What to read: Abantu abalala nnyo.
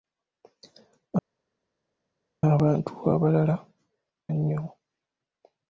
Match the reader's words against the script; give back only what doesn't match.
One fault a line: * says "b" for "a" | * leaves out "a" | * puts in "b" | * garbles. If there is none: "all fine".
all fine